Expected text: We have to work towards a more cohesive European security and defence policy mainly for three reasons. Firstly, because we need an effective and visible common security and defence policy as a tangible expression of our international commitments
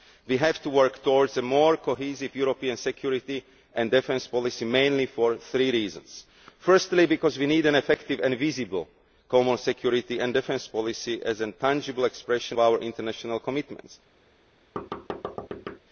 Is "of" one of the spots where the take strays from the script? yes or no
yes